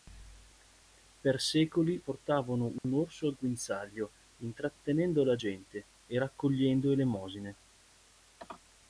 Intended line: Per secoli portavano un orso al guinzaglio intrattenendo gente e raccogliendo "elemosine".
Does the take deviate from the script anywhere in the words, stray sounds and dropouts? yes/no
yes